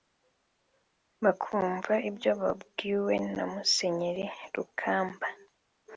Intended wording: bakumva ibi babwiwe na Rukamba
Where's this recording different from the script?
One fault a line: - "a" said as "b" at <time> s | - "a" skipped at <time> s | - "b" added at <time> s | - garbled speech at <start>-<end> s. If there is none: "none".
- "ibi" said as "ibyo" at 2.1 s
- "Musenyeri" added at 3.5 s